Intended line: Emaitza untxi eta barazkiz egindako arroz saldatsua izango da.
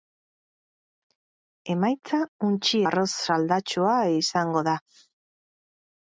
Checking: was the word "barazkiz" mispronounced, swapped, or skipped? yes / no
yes